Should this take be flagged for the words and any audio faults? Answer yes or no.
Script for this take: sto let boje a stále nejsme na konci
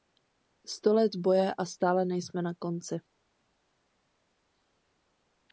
no